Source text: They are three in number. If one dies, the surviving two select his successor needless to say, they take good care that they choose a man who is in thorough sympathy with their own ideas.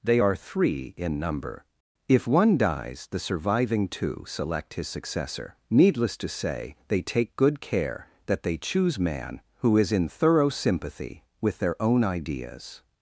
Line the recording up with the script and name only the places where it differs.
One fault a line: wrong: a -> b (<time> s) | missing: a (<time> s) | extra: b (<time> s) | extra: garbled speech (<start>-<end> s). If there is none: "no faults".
missing: a (9.0 s)